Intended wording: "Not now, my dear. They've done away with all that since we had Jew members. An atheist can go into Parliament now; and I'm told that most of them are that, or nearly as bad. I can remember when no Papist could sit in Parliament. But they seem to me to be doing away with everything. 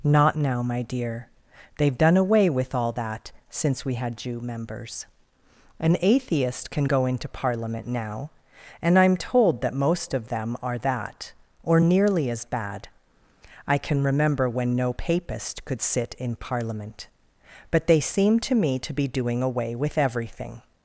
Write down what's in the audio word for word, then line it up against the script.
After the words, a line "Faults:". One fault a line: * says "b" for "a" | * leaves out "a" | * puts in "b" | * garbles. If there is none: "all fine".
"Not now, my dear. They've done away with all that since we had Jew members. An atheist can go into Parliament now; and I'm told that most of them are that, or nearly as bad. I can remember when no Papist could sit in Parliament. But they seem to me to be doing away with everything.
Faults:
all fine